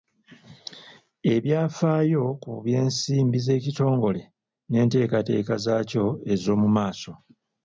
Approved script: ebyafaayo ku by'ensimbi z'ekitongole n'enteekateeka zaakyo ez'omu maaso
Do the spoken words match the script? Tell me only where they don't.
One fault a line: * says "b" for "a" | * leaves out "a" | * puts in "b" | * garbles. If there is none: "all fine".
all fine